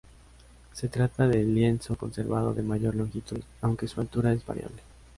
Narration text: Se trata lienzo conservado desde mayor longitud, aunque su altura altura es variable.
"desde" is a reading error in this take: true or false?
true